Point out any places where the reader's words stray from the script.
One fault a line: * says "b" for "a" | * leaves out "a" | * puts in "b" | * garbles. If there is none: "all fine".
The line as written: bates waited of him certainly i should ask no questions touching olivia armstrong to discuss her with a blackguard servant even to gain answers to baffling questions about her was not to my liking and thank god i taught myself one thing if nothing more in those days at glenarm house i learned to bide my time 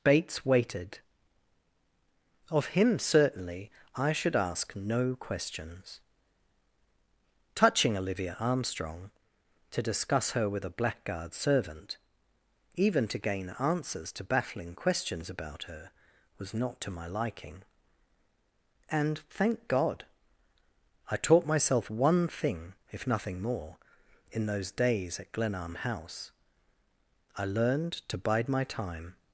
all fine